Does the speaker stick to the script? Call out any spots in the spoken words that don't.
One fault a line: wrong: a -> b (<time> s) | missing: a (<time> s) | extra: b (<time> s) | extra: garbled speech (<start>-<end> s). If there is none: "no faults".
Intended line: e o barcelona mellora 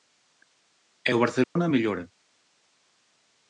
no faults